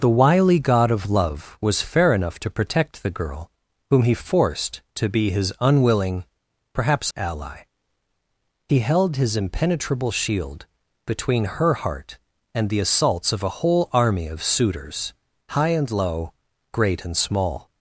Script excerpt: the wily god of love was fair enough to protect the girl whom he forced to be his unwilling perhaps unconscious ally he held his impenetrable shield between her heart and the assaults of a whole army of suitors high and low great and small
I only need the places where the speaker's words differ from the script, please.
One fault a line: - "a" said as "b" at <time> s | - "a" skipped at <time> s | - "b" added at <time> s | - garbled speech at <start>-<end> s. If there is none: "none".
- "unconscious" skipped at 7.1 s